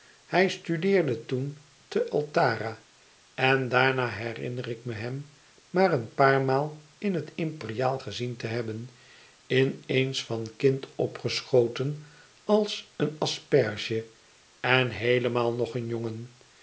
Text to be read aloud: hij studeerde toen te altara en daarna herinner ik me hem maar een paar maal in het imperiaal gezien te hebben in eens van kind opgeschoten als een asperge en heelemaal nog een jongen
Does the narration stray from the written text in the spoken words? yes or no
no